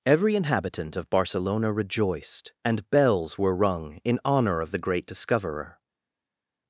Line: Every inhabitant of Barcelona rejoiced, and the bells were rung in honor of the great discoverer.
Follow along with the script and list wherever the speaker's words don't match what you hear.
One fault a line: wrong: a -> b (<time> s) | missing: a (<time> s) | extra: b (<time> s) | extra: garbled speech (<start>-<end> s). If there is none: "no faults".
missing: the (2.9 s)